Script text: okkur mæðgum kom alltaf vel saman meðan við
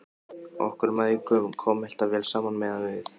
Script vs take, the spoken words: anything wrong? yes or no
no